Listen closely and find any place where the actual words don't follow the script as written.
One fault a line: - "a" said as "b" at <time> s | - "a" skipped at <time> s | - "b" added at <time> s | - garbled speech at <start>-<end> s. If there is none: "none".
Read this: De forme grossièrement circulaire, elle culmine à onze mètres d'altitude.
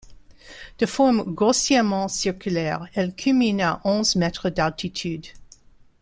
none